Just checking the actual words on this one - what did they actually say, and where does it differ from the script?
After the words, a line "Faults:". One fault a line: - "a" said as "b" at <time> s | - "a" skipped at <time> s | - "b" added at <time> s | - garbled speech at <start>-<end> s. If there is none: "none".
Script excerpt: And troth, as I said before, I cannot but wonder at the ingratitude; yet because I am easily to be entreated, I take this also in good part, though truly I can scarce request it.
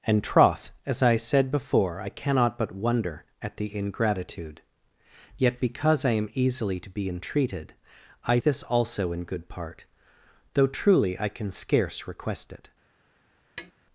And troth, as I said before, I cannot but wonder at the ingratitude; yet because I am easily to be entreated, I this also in good part, though truly I can scarce request it.
Faults:
- "take" skipped at 8.4 s